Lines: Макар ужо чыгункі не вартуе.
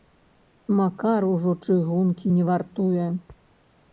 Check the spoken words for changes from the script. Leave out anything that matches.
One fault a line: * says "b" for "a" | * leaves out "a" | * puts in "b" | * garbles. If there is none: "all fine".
all fine